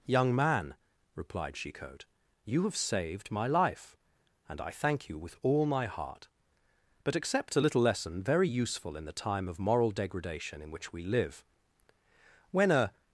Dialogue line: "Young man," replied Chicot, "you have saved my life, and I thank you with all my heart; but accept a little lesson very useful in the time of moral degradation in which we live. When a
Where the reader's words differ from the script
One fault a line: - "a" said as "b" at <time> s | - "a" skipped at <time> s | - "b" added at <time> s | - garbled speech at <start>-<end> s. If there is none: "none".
none